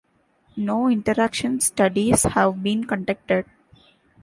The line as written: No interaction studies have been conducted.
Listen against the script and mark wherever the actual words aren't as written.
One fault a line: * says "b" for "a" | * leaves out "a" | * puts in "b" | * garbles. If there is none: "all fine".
all fine